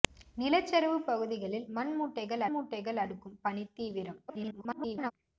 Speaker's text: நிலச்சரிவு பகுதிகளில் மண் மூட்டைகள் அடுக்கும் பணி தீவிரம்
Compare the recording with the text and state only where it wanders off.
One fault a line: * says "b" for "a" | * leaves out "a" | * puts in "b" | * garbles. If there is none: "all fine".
* puts in "மூட்டைகள்"
* garbles